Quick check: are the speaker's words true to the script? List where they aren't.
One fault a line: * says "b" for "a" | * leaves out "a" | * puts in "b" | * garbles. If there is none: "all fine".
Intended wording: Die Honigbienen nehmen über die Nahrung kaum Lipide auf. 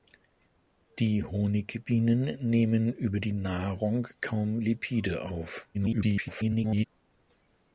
* garbles